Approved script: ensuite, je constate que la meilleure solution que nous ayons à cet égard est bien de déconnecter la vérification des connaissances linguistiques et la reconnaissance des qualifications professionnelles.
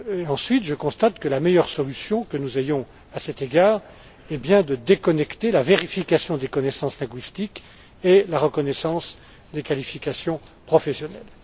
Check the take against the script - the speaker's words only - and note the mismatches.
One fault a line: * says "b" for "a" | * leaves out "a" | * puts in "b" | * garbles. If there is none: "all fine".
all fine